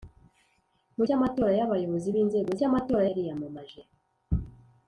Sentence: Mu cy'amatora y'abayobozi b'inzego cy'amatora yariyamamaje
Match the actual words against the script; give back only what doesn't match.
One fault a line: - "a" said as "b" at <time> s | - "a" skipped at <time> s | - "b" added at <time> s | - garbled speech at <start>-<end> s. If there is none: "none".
none